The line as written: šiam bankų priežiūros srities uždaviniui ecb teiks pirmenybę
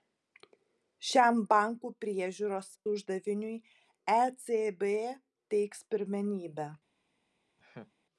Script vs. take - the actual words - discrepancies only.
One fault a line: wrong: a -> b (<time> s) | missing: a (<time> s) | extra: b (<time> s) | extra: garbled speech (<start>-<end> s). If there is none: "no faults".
missing: srities (2.7 s)